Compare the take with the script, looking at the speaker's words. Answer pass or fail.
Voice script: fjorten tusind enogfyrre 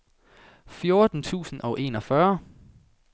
fail